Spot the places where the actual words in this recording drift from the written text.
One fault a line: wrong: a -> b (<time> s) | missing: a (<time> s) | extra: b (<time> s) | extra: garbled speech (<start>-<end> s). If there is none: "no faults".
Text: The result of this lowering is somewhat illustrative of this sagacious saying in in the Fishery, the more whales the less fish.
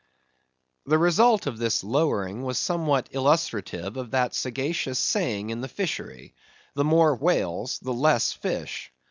wrong: is -> was (2.4 s)
wrong: this -> that (4.1 s)
missing: in (5.6 s)